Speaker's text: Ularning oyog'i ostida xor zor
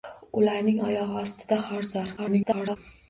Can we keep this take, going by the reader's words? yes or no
no